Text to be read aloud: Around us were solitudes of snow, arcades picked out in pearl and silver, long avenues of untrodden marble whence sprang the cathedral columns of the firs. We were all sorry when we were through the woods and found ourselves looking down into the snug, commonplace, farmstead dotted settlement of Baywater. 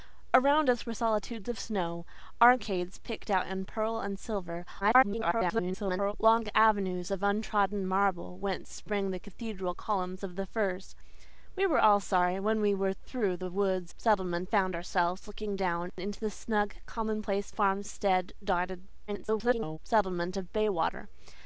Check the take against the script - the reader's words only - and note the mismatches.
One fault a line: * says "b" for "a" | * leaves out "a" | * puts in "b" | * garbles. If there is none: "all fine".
* garbles
* says "settlement" for "and"
* garbles